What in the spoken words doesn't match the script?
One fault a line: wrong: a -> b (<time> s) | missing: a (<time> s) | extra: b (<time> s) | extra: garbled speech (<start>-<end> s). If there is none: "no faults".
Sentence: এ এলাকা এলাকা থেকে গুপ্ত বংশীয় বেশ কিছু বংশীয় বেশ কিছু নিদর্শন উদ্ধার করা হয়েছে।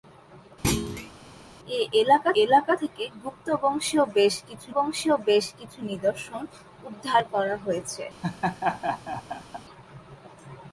no faults